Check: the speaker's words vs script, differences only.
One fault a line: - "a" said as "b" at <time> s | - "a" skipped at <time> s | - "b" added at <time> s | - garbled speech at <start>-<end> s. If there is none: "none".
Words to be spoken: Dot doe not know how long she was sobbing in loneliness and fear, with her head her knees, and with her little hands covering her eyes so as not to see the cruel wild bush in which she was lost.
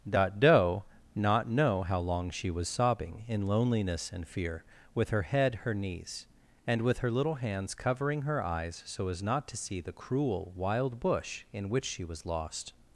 none